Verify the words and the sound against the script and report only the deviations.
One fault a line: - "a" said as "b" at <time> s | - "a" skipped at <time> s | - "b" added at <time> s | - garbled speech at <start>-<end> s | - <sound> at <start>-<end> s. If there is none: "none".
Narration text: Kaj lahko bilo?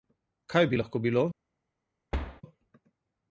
- "bi" added at 0.7 s
- thud at 2.1-2.4 s